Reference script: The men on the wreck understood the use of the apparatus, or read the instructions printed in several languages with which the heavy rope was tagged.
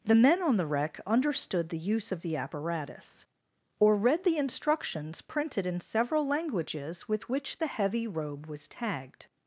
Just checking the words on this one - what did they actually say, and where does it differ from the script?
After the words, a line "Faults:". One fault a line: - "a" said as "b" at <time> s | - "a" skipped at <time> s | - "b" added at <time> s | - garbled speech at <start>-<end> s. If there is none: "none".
The men on the wreck understood the use of the apparatus, or read the instructions printed in several languages with which the heavy robe was tagged.
Faults:
- "rope" said as "robe" at 8.1 s